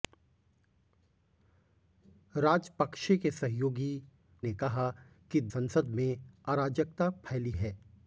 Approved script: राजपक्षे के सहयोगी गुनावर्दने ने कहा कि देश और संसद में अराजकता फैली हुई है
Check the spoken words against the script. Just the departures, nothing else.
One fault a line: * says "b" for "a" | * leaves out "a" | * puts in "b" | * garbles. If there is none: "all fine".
* leaves out "गुनावर्दने"
* leaves out "देश और"
* leaves out "हुई"